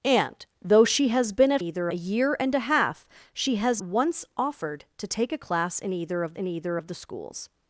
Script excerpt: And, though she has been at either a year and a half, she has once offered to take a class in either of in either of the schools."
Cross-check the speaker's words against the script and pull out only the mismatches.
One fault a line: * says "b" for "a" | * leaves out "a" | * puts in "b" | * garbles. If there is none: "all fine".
all fine